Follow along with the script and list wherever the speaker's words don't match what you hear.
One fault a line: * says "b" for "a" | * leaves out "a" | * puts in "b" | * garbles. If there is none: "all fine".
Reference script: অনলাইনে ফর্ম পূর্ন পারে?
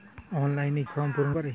all fine